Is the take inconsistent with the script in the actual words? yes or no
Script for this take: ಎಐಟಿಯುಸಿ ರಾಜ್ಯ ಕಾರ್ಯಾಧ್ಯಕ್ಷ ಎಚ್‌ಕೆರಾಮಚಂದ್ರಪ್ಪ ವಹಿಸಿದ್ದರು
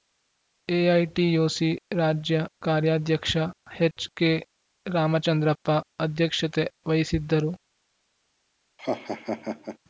yes